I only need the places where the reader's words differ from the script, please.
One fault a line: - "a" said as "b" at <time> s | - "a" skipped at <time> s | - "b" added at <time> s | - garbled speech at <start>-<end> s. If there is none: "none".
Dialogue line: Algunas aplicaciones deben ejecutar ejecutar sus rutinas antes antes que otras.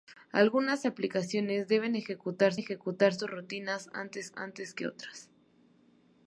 none